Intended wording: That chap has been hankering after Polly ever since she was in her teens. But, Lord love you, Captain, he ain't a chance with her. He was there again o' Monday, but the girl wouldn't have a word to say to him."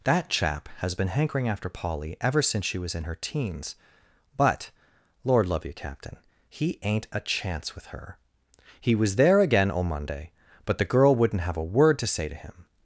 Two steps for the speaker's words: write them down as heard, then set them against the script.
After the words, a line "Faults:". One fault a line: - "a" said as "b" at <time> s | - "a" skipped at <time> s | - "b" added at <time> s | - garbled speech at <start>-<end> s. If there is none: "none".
That chap has been hankering after Polly ever since she was in her teens. But, Lord love you, Captain, he ain't a chance with her. He was there again o' Monday, but the girl wouldn't have a word to say to him."
Faults:
none